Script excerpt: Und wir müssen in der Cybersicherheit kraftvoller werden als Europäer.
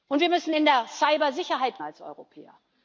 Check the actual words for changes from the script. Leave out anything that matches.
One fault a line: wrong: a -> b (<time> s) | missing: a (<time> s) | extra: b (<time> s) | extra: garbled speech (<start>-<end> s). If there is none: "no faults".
missing: kraftvoller werden (1.8 s)